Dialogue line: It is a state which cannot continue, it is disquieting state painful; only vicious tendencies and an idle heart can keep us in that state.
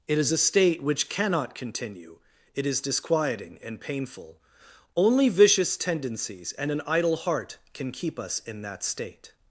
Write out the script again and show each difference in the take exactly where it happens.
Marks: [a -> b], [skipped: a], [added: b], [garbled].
It is a state which cannot continue, it is disquieting [state -> and] painful; only vicious tendencies and an idle heart can keep us in that state.